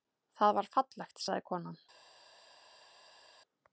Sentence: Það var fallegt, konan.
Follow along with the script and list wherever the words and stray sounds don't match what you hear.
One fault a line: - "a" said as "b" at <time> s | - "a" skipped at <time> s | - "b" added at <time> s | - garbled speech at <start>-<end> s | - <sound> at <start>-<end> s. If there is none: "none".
- "sagði" added at 1.3 s